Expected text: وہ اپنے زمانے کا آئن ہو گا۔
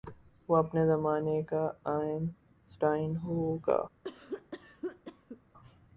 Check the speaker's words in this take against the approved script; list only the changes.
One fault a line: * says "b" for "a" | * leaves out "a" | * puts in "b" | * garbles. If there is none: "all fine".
* puts in "سٹائن"